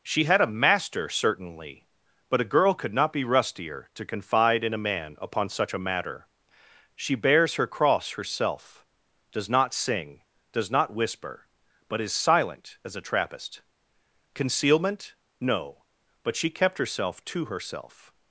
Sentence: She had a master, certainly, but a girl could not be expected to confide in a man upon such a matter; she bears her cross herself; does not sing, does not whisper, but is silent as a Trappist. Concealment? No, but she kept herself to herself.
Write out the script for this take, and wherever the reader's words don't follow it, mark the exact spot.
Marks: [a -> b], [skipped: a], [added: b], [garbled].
She had a master, certainly, but a girl could not be [expected -> rustier] to confide in a man upon such a matter; she bears her cross herself; does not sing, does not whisper, but is silent as a Trappist. Concealment? No, but she kept herself to herself.